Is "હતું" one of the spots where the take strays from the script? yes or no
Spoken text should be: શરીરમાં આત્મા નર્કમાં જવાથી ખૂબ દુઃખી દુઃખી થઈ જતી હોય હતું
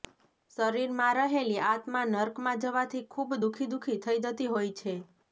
yes